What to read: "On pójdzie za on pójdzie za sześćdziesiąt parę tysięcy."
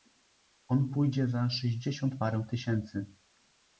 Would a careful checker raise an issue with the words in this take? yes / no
yes